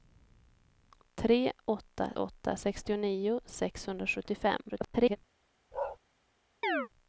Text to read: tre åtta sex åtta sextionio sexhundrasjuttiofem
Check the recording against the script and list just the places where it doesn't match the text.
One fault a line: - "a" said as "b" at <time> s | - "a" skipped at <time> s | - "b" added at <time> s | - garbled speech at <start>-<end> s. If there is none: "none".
- "sex" skipped at 2.1 s
- garbled speech at 4.7-5.2 s